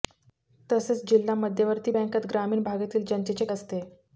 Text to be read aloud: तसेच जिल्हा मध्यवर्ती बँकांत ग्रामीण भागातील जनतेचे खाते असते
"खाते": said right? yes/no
no